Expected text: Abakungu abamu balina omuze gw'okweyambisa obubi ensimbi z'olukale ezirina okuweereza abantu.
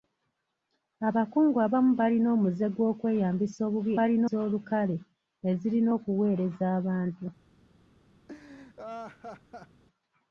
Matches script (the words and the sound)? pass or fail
fail